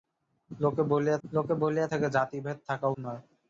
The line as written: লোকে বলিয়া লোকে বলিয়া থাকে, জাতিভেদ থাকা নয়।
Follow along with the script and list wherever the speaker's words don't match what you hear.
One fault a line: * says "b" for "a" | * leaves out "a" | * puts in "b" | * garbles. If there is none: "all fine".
all fine